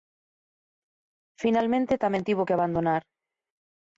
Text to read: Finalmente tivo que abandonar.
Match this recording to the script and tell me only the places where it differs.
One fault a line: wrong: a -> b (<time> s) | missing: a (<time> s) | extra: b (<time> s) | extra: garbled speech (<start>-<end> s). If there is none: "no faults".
extra: tamén (2.0 s)